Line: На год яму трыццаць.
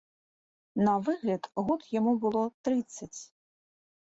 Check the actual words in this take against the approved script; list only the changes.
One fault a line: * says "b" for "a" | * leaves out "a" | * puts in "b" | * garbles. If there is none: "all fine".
* puts in "выгляд"
* puts in "было"